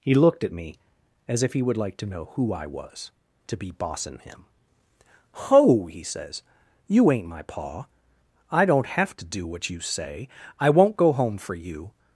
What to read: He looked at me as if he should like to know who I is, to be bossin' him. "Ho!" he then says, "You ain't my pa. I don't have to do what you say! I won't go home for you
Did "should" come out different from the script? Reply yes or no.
yes